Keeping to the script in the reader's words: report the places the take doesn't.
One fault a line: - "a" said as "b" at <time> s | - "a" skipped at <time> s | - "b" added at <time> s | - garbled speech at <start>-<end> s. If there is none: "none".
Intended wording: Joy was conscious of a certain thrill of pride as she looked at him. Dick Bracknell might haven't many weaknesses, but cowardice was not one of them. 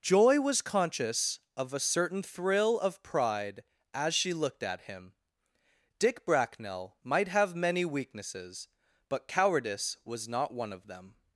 - "haven't" said as "have" at 7.3 s